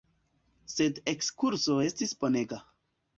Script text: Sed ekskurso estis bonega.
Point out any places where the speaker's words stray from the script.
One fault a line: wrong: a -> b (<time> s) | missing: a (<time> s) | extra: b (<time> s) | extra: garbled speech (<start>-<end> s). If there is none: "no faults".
no faults